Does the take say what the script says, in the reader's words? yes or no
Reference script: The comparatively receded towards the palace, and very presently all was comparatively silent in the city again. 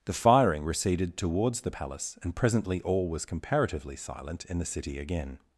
no